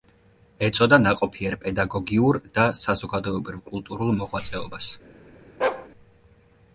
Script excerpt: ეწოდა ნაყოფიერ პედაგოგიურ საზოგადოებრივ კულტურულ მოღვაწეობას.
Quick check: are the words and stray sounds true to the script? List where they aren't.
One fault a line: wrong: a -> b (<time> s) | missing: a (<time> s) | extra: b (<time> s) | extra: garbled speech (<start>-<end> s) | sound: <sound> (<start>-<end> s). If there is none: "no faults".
extra: და (2.6 s)
sound: bark (5.6-5.9 s)